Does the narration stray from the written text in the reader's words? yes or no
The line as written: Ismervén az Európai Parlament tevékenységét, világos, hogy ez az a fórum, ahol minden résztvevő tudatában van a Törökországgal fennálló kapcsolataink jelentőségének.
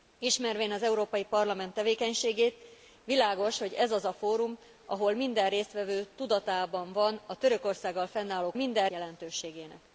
yes